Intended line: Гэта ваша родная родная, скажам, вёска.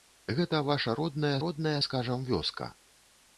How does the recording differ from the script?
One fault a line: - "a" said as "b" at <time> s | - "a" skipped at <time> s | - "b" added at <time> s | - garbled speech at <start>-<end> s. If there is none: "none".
none